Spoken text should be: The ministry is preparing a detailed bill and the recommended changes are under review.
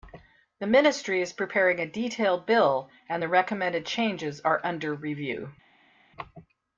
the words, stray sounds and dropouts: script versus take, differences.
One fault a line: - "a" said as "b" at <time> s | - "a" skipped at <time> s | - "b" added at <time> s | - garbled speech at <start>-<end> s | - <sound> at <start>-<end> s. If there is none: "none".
none